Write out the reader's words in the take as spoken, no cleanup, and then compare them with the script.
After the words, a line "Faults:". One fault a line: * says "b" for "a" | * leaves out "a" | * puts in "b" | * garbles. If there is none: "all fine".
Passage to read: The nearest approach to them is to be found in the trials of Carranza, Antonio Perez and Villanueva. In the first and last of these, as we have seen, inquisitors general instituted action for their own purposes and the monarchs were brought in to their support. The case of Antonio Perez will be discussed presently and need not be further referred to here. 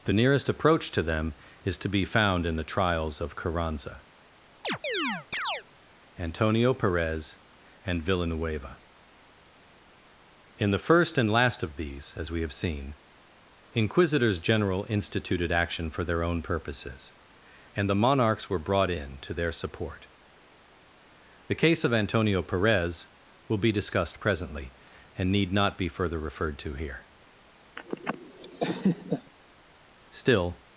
The nearest approach to them is to be found in the trials of Carranza, Antonio Perez and Villanueva. In the first and last of these, as we have seen, inquisitors general instituted action for their own purposes and the monarchs were brought in to their support. The case of Antonio Perez will be discussed presently and need not be further referred to here. Still
Faults:
* puts in "Still"